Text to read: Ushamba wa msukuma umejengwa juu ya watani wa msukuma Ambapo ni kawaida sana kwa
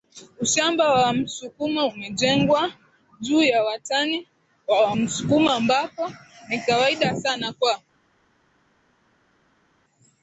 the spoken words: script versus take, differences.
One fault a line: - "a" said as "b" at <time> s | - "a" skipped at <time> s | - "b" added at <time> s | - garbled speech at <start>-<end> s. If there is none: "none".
none